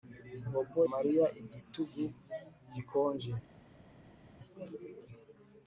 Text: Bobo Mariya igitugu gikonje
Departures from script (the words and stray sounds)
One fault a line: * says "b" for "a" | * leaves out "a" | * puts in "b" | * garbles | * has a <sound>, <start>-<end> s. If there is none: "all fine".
all fine